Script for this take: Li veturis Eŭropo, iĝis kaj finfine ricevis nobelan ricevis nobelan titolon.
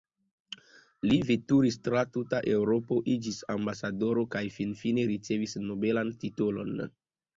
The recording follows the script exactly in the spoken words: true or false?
false